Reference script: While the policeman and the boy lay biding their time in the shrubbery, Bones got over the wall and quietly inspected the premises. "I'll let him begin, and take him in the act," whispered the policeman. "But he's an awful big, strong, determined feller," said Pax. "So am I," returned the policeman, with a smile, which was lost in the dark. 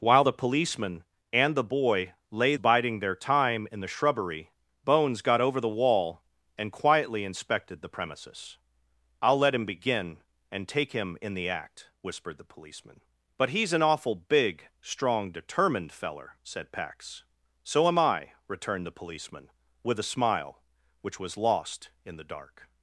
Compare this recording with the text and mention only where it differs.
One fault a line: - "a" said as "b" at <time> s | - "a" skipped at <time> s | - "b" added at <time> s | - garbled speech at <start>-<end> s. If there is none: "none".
none